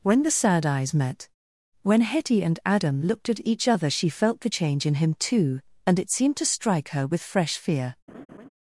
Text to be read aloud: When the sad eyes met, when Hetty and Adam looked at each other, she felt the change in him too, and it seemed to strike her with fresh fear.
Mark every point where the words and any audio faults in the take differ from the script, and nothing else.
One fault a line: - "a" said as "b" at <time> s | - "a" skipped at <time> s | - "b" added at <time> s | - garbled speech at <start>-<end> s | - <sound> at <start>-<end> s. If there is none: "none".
- laugh at 8.1-8.5 s